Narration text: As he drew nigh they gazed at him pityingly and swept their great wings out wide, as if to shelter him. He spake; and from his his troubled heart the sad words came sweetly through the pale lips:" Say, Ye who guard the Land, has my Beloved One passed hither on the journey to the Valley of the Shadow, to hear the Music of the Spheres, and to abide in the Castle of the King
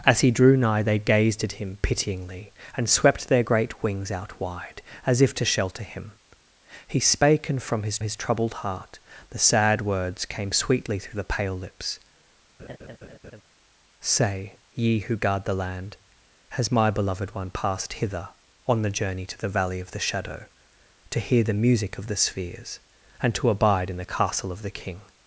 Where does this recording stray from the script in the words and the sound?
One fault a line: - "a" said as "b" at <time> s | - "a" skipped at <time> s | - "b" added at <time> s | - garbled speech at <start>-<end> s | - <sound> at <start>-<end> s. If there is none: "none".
- laugh at 12.6-13.4 s